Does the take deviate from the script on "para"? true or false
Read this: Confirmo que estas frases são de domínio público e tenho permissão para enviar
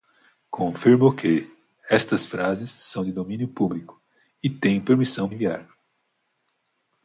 true